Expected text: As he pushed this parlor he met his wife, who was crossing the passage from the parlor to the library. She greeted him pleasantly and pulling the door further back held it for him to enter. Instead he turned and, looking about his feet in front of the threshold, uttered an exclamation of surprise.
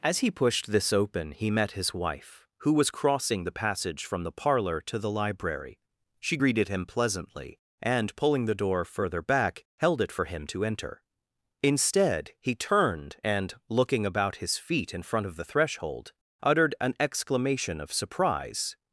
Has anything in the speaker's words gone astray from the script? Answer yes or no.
yes